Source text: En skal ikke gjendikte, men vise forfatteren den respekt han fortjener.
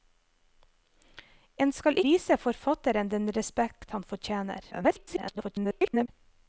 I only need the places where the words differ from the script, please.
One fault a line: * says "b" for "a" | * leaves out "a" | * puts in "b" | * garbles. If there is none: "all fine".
* leaves out "ikke gjendikte men"
* garbles